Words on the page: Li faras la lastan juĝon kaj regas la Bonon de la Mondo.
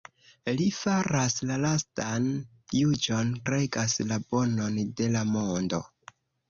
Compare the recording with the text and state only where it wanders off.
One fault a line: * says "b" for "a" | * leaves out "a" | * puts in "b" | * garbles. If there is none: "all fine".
* leaves out "kaj"